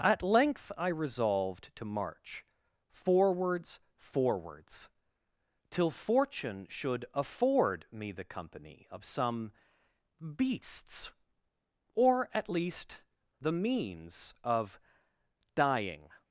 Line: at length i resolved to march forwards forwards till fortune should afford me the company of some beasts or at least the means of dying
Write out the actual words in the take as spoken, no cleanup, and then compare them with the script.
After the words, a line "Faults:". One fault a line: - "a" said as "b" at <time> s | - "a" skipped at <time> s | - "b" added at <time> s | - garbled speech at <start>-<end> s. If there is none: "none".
at length i resolved to march forwards forwards till fortune should afford me the company of some beasts or at least the means of dying
Faults:
none